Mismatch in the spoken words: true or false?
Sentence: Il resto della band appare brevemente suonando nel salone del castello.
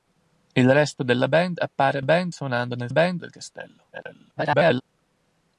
true